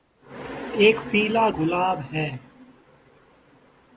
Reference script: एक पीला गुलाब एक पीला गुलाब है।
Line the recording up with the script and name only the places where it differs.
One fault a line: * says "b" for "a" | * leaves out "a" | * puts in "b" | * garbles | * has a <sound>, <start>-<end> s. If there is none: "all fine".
* leaves out "एक पीला गुलाब"